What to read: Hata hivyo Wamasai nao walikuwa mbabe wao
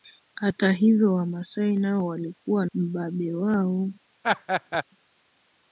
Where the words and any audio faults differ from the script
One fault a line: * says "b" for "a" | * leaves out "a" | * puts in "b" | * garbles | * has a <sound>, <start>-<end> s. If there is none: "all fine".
* has a laugh, 4.2-4.8 s